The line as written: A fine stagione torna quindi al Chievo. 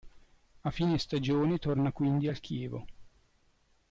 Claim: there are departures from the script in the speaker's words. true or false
false